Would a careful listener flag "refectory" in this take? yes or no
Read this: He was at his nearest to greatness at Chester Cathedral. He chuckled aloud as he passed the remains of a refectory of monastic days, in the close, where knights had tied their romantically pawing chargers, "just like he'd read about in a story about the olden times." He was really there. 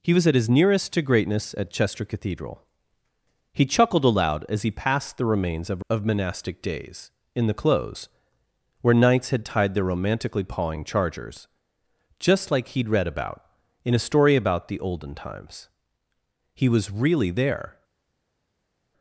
yes